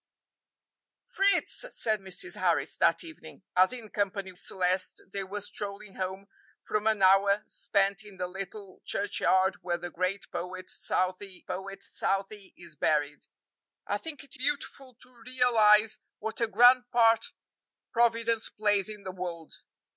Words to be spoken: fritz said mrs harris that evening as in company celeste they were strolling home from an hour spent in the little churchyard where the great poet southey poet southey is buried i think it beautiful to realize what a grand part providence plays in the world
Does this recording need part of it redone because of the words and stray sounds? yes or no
no